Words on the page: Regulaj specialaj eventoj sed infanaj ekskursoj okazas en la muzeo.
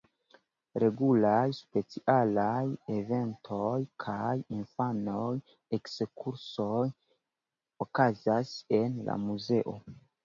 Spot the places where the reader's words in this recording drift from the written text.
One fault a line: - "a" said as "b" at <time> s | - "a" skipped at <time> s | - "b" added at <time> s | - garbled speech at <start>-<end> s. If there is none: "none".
- "sed" said as "kaj" at 4.0 s